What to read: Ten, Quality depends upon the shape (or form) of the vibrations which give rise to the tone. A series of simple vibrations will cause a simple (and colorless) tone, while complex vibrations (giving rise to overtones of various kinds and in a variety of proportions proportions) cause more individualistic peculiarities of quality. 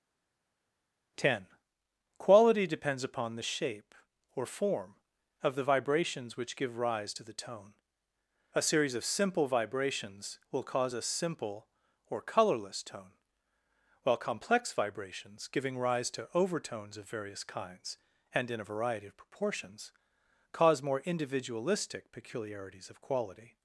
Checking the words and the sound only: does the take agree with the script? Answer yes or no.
no